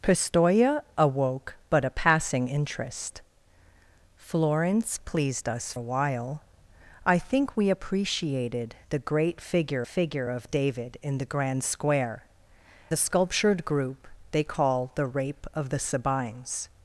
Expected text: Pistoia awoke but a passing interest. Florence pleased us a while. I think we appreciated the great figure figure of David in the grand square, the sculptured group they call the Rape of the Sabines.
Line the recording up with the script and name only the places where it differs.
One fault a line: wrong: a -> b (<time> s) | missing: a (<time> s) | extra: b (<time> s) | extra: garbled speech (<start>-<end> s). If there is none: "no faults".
no faults